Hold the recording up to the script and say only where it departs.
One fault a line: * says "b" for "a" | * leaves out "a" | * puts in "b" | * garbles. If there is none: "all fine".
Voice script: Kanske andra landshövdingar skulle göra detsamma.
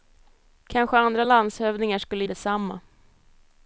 * leaves out "göra"